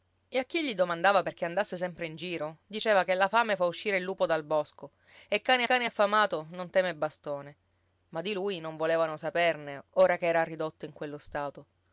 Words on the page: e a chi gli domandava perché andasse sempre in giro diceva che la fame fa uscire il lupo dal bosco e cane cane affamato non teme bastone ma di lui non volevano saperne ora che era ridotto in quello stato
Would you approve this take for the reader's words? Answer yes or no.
yes